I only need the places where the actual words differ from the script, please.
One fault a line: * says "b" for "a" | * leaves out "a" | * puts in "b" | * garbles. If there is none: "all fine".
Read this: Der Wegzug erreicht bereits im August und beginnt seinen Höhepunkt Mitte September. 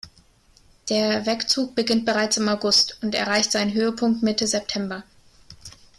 * says "beginnt" for "erreicht"
* says "erreicht" for "beginnt"